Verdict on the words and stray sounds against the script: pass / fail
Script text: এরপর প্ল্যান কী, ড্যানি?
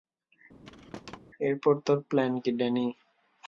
fail